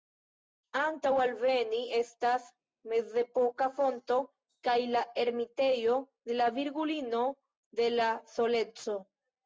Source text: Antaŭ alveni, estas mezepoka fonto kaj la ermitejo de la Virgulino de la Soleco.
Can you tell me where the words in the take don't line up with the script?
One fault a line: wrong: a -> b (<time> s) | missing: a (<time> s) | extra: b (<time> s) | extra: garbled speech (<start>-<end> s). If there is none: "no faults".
no faults